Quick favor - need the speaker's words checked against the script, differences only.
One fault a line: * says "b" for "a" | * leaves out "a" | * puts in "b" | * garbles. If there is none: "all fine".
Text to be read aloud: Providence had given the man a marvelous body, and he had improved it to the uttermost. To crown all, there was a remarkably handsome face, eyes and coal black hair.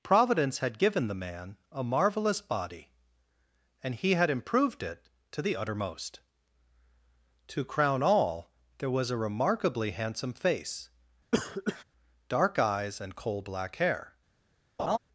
* puts in "dark"